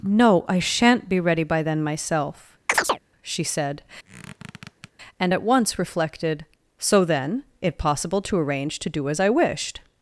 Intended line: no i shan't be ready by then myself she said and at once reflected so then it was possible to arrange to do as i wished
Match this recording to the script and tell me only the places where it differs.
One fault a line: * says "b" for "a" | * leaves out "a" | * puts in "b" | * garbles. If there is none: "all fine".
* leaves out "was"